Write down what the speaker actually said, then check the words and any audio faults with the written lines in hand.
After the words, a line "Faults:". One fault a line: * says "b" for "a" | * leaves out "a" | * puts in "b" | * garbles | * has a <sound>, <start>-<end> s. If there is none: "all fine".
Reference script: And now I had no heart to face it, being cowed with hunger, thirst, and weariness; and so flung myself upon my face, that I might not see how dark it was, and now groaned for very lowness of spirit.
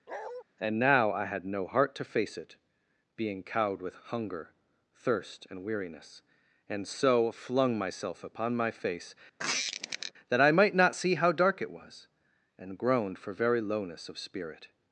And now I had no heart to face it, being cowed with hunger, thirst, and weariness; and so flung myself upon my face, that I might not see how dark it was, and groaned for very lowness of spirit.
Faults:
* has a bark, 0.1-0.4 s
* has a squeak, 9.4-10.1 s
* leaves out "now"